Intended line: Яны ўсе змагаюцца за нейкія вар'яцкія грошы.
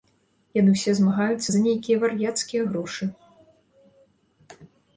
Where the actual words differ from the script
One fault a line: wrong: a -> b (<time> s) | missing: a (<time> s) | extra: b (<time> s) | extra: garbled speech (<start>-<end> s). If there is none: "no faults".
no faults